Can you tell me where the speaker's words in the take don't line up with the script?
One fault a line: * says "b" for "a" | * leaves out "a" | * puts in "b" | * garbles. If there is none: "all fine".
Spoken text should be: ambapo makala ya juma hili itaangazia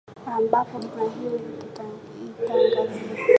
* leaves out "makala ya"